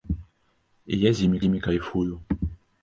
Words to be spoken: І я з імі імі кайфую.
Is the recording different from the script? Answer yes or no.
no